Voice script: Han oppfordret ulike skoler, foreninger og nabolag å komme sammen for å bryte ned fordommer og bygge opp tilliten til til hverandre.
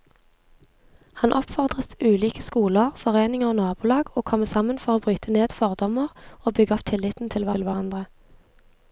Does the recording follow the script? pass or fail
pass